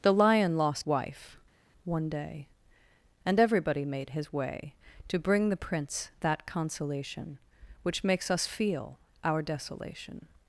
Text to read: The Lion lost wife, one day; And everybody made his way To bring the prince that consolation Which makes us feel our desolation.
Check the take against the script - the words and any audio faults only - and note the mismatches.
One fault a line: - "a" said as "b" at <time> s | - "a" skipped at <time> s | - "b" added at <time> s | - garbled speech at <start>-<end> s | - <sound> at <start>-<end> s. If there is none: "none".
none